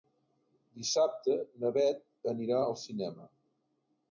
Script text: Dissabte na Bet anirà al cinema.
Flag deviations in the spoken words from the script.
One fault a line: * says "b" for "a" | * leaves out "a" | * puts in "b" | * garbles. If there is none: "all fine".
all fine